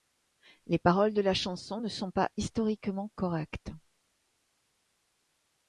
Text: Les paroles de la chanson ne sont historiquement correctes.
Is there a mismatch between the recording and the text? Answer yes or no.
yes